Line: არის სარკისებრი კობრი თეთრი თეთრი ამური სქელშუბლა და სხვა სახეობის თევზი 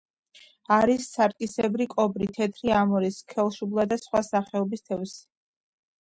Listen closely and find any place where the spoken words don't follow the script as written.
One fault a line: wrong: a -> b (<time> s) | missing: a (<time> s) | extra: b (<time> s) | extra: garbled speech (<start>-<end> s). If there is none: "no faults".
missing: თეთრი (2.7 s)